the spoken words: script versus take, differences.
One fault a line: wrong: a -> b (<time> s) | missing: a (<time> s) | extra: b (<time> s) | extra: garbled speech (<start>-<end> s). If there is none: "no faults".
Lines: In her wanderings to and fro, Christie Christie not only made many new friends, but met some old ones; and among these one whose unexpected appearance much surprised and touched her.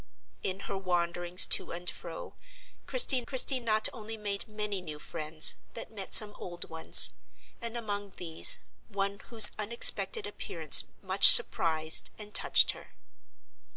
no faults